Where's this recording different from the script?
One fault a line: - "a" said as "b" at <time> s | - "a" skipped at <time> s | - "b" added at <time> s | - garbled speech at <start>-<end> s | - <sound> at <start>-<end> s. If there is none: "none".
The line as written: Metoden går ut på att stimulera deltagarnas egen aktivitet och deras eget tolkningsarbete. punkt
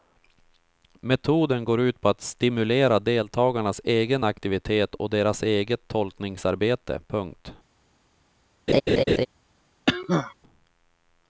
- laugh at 8.7-9.3 s
- cough at 9.9-10.3 s